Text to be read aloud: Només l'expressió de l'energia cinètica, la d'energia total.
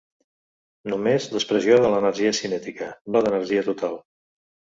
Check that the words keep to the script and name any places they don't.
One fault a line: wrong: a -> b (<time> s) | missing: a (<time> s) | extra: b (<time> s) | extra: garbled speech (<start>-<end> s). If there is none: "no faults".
no faults